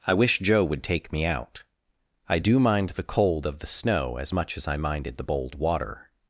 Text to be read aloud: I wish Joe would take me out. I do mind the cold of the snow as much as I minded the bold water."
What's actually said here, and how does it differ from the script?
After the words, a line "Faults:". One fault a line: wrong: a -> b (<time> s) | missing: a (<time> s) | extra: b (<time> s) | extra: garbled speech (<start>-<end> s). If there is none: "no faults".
I wish Joe would take me out. I do mind the cold of the snow as much as I minded the bold water."
Faults:
no faults